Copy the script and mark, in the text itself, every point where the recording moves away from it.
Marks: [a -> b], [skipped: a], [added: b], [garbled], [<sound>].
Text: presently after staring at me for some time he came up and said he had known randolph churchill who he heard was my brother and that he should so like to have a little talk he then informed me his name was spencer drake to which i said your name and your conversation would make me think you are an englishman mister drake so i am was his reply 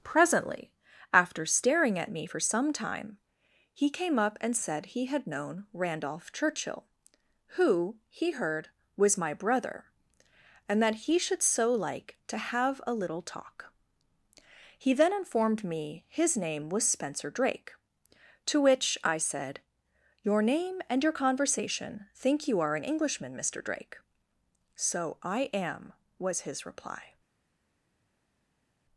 presently after staring at me for some time he came up and said he had known randolph churchill who he heard was my brother and that he should so like to have a little talk he then informed me his name was spencer drake to which i said your name and your conversation [skipped: would make me] think you are an englishman mister drake so i am was his reply